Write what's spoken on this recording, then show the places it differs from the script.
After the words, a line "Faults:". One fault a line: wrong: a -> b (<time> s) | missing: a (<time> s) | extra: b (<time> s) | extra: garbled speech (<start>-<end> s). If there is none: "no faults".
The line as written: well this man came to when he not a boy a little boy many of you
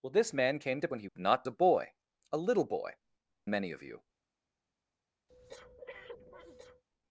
well this man came to when he not a boy a little boy many of you
Faults:
no faults